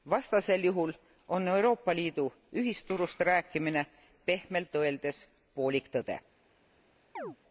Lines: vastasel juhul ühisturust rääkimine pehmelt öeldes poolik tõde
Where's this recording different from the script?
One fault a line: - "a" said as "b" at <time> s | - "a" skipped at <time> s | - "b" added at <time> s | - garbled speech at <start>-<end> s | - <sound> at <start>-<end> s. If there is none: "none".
- "on euroopa liidu" added at 1.3 s
- chirp at 7.2-7.4 s